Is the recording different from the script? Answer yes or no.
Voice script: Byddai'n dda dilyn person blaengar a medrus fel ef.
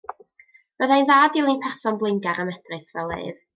no